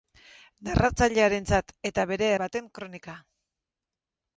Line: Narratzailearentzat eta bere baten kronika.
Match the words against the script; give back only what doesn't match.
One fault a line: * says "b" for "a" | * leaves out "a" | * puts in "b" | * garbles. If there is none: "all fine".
all fine